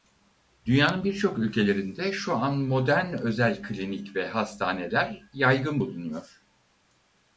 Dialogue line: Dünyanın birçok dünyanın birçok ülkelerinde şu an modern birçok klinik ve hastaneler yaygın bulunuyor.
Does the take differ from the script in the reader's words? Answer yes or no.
yes